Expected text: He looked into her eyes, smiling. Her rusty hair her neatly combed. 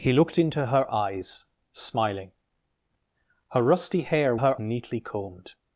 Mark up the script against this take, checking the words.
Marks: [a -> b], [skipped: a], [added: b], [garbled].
He looked into her eyes, smiling. Her rusty hair her neatly combed.